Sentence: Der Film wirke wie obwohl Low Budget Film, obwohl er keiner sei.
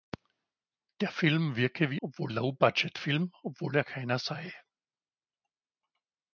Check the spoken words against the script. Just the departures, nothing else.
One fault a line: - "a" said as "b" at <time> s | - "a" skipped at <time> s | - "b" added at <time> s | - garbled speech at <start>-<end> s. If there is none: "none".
none